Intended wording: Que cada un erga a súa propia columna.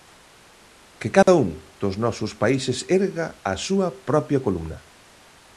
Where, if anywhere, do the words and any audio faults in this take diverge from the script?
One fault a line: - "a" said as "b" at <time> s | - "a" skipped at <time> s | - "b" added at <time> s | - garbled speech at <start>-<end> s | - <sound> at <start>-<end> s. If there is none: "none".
- dropout at 1.2-1.3 s
- "dos nosos países" added at 1.8 s